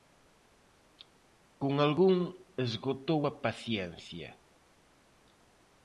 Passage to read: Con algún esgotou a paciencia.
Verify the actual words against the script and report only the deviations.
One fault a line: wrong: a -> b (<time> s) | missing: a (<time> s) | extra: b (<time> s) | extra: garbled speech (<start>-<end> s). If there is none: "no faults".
no faults